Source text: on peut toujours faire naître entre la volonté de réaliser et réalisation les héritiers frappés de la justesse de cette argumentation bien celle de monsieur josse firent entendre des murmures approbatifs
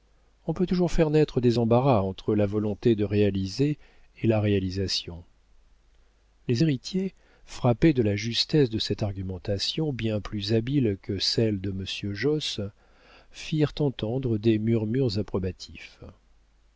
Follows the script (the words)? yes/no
no